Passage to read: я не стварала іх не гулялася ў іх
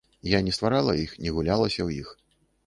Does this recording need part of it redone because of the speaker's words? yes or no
no